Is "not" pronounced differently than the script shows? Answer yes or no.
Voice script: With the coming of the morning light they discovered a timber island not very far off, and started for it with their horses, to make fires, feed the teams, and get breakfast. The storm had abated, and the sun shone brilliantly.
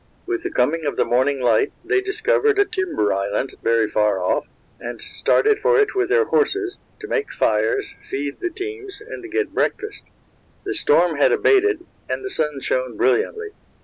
yes